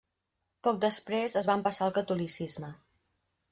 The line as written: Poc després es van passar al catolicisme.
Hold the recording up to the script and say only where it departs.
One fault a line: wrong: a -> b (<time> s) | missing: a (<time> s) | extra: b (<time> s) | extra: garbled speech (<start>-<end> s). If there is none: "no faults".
no faults